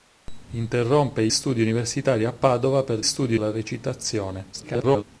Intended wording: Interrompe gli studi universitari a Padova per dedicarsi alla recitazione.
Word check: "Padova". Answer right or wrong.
right